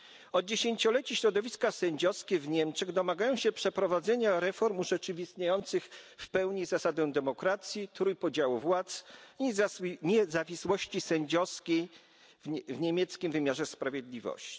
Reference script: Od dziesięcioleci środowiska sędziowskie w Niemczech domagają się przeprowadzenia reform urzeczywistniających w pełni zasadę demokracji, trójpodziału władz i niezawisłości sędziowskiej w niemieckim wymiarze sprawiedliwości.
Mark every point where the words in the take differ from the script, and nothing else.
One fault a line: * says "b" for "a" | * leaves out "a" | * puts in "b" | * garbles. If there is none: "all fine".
all fine